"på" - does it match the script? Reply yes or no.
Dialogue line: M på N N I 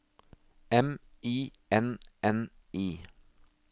no